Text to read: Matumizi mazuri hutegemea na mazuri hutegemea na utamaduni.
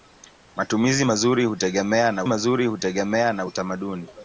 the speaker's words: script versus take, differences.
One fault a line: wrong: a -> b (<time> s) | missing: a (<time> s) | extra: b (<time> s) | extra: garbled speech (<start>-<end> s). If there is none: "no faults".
no faults